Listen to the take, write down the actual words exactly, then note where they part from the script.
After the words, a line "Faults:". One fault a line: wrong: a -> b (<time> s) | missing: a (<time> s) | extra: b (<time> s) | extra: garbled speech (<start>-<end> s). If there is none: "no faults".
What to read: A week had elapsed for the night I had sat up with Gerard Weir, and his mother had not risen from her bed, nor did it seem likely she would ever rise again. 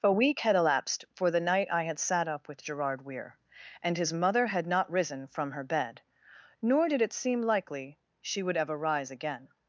A week had elapsed for the night I had sat up with Gerard Weir, and his mother had not risen from her bed, nor did it seem likely she would ever rise again.
Faults:
no faults